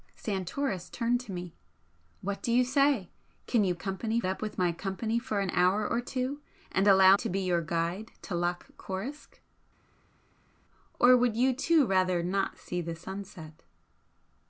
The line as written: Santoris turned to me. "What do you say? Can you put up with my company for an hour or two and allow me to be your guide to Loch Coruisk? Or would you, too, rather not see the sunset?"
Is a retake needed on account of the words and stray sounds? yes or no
yes